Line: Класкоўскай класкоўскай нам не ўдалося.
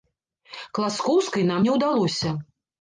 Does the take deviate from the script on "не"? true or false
false